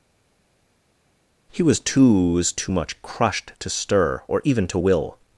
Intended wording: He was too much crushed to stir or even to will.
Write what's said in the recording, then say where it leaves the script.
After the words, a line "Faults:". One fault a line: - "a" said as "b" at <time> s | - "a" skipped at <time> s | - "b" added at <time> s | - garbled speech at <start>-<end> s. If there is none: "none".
He was too was too much crushed to stir or even to will.
Faults:
- "was too" added at 2.3 s